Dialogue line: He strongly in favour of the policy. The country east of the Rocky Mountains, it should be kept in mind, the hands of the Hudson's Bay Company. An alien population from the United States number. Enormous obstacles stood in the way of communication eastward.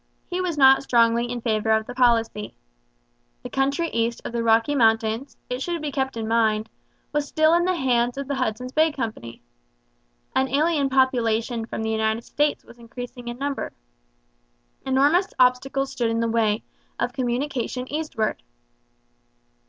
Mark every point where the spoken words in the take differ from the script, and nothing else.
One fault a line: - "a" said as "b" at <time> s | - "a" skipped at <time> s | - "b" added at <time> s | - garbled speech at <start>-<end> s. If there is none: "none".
- "was not" added at 0.4 s
- "was still in" added at 7.1 s
- "was increasing in" added at 12.6 s